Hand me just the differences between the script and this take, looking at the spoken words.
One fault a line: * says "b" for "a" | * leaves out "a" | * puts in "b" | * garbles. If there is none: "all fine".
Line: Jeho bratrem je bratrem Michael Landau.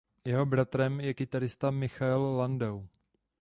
* says "kytarista" for "bratrem"